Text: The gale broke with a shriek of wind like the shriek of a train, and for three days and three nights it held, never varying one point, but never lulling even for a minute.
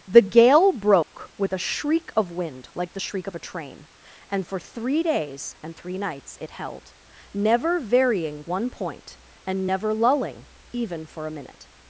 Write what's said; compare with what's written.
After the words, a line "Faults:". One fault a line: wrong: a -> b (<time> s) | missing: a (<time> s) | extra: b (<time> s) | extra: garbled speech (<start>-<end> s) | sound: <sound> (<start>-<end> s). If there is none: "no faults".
The gale broke with a shriek of wind like the shriek of a train, and for three days and three nights it held, never varying one point, and never lulling even for a minute.
Faults:
sound: dropout (1.0-1.1 s)
wrong: but -> and (9.5 s)